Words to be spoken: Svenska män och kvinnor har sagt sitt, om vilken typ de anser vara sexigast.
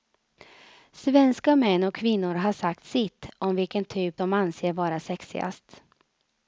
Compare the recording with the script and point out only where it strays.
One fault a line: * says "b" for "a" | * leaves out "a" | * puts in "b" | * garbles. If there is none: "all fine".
all fine